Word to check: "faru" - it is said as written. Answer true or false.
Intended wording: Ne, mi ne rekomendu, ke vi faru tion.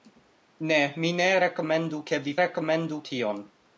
false